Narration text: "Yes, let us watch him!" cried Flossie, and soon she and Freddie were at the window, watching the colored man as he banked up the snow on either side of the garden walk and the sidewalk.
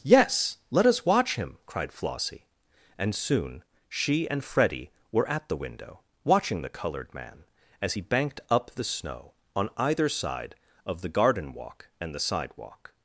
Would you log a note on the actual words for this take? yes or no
no